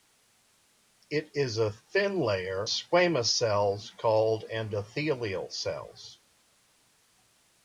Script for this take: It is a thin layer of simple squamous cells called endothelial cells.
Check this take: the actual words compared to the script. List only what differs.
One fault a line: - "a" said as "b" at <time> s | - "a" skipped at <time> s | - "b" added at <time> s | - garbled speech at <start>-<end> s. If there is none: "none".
- "of simple" skipped at 2.7 s